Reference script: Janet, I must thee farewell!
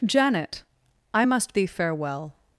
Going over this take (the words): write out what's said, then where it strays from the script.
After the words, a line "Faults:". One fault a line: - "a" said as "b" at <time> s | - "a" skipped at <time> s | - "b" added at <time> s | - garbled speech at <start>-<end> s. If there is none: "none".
Janet, I must thee farewell!
Faults:
none